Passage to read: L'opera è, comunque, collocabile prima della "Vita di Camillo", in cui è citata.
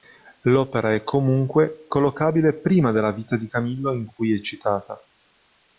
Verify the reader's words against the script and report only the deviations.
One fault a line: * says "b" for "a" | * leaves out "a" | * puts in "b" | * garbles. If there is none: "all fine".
all fine